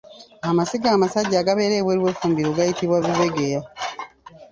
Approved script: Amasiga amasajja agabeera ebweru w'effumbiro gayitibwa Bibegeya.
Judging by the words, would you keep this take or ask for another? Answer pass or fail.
pass